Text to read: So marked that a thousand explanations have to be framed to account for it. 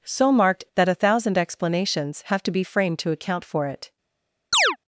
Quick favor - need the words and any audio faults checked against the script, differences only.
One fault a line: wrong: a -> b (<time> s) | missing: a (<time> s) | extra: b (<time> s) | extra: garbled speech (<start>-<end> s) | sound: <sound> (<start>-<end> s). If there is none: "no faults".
sound: chirp (4.5-4.8 s)